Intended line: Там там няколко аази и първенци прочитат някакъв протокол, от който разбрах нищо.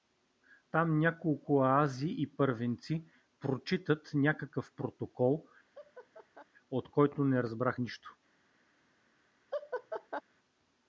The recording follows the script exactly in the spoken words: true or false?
false